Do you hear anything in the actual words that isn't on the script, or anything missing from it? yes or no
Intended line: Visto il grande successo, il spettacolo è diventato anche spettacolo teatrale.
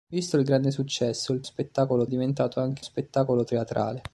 no